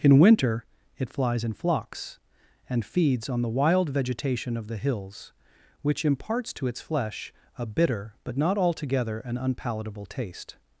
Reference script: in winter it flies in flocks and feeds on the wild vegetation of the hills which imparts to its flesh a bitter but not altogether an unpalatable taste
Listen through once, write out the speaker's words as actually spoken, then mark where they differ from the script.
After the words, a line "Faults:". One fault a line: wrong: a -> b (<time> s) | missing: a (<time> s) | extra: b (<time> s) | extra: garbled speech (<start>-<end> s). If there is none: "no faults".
in winter it flies in flocks and feeds on the wild vegetation of the hills which imparts to its flesh a bitter but not altogether an unpalatable taste
Faults:
no faults